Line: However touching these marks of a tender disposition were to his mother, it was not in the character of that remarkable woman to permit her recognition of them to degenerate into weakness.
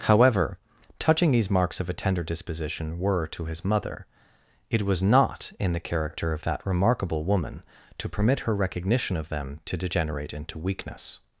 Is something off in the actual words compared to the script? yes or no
no